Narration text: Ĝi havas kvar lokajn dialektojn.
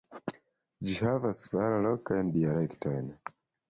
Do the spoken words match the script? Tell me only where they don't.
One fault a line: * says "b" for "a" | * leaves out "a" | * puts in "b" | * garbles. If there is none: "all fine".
all fine